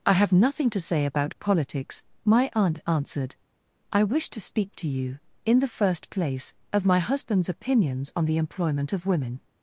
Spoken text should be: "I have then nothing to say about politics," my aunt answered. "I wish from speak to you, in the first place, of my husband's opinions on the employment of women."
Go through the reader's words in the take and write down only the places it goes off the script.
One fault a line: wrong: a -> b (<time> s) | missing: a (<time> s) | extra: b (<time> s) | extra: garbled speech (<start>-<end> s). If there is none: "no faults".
missing: then (0.3 s)
wrong: from -> to (4.3 s)